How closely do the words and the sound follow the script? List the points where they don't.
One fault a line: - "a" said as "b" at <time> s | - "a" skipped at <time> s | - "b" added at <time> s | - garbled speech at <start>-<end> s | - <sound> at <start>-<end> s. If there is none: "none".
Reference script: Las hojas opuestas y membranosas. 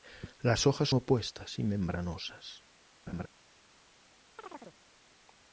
- laugh at 3.1-3.3 s
- chirp at 4.4-4.8 s